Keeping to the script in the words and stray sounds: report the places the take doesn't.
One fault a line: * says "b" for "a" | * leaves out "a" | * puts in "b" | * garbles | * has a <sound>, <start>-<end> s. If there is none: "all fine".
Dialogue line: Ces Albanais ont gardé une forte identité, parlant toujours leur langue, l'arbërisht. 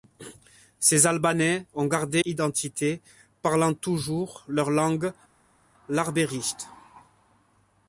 * leaves out "une forte"